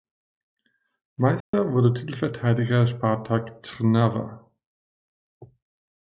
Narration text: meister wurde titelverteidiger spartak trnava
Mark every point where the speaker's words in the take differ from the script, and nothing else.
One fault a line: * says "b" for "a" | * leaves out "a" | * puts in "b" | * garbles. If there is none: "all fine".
all fine